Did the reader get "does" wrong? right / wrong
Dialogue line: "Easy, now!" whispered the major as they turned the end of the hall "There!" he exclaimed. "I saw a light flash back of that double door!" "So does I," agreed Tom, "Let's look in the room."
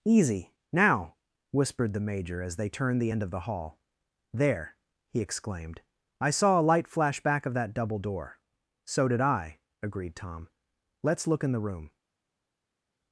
wrong